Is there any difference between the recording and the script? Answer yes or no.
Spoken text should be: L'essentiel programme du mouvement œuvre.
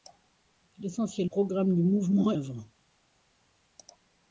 no